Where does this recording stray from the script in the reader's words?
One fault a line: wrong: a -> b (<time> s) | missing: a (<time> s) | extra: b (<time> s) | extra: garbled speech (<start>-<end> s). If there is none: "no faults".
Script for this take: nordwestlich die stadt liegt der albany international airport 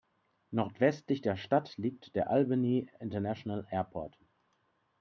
wrong: die -> der (1.2 s)